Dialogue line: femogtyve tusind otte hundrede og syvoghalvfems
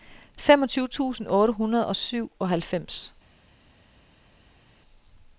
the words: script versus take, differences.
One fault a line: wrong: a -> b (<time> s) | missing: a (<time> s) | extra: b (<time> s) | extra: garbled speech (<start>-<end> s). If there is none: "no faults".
no faults